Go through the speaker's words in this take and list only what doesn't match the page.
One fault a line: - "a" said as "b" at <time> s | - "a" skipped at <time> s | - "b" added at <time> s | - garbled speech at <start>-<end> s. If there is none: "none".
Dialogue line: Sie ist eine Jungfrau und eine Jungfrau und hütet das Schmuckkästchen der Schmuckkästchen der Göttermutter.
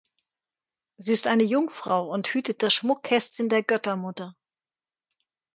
- "eine Jungfrau und" skipped at 2.3 s
- "Schmuckkästchen der" skipped at 3.6 s